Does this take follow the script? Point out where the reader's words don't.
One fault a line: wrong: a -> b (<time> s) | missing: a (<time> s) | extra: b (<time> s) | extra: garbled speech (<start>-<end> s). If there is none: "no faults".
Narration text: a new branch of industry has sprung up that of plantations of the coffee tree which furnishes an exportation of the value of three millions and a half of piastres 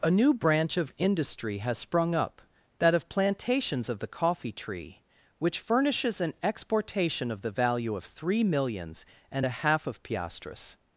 no faults